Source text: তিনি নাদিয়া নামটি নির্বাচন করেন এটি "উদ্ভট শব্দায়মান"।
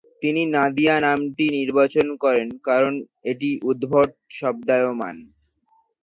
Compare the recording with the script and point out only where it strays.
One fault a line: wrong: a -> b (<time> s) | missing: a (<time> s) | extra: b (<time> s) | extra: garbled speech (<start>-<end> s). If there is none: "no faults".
extra: কারণ (2.7 s)